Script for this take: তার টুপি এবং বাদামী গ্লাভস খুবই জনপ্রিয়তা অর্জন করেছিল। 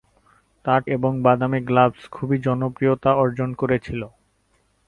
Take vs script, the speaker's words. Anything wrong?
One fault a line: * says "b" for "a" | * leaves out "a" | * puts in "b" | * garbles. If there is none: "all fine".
* leaves out "টুপি"